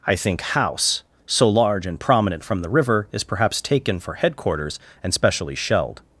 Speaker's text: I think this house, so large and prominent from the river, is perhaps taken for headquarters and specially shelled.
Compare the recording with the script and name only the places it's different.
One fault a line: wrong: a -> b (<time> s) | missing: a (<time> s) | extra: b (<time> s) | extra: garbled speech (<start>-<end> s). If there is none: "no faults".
missing: this (0.4 s)